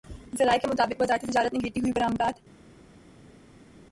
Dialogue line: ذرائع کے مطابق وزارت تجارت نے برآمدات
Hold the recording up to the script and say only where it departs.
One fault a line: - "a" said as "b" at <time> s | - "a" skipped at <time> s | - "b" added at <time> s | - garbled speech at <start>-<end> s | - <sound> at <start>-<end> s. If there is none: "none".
- "گرتی ہوئی" added at 1.6 s